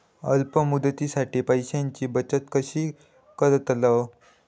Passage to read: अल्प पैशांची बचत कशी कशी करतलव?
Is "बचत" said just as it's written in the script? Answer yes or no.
yes